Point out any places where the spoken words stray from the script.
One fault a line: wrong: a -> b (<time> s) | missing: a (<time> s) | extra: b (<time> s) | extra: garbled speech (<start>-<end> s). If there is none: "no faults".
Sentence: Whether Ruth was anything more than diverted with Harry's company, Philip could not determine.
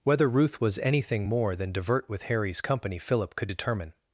wrong: diverted -> divert (1.7 s)
missing: not (3.5 s)